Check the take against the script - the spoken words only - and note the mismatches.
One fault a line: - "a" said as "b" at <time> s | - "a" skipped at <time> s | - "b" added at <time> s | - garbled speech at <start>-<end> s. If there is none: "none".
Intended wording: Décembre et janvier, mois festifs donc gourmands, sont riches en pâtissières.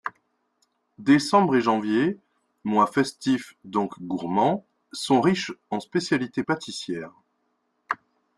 - "spécialités" added at 5.8 s